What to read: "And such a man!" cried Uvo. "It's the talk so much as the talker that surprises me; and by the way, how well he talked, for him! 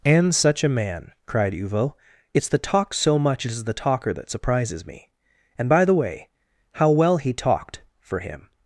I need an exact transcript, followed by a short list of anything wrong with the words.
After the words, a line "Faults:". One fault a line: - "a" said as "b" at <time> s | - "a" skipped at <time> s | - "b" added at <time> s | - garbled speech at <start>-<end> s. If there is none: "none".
"And such a man!" cried Uvo. "It's the talk so much as the talker that surprises me; and by the way, how well he talked, for him!
Faults:
none